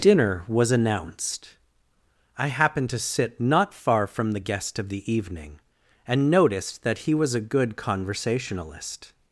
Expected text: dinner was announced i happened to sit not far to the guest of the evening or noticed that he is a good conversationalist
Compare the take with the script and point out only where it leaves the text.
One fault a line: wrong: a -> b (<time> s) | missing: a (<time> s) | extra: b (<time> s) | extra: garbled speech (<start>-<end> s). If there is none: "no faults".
wrong: to -> from (4.1 s)
wrong: or -> and (6.1 s)
wrong: is -> was (7.2 s)